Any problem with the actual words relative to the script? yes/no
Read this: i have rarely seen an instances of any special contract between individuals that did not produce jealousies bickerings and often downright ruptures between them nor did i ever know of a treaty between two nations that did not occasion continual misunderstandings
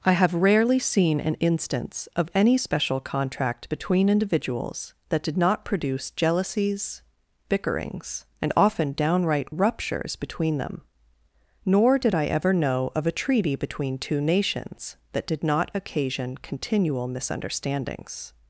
yes